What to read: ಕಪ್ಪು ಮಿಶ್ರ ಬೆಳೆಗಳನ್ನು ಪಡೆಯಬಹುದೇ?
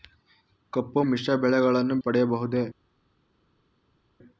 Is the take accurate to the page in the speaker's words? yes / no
yes